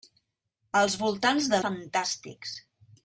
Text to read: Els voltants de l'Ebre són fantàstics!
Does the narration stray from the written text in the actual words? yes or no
yes